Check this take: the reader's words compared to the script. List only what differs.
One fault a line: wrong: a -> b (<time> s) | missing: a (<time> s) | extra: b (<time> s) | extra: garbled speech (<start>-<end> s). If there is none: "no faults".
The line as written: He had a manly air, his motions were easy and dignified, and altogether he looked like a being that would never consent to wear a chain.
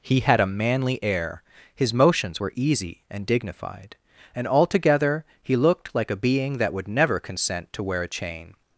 no faults